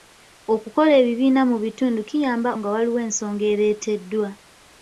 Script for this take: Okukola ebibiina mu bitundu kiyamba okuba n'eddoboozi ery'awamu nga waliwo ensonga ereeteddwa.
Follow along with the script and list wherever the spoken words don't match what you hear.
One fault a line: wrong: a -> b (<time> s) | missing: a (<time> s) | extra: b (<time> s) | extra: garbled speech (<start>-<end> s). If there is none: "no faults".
missing: okuba n'eddoboozi ery'awamu (2.5 s)